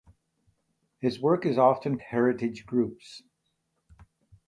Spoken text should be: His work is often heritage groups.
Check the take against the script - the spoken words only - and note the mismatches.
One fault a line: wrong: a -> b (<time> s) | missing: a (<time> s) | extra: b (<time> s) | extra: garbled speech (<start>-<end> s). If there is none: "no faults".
no faults